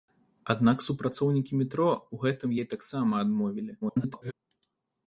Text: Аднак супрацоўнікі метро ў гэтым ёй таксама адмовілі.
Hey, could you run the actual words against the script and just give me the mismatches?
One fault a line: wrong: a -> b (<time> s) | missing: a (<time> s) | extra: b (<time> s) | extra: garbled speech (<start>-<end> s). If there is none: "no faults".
extra: garbled speech (3.8-4.3 s)